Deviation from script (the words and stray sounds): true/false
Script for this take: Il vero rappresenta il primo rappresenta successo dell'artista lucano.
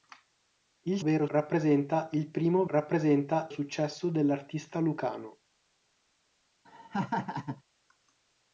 true